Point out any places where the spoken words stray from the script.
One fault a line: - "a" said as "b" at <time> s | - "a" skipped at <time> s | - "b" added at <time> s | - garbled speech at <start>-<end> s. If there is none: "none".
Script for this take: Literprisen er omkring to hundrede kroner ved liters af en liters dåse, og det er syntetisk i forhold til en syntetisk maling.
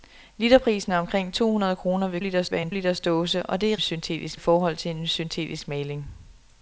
none